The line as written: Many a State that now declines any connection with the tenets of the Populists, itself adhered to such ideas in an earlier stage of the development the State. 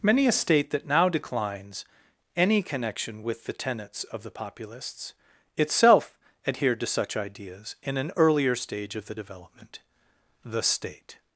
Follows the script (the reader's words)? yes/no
yes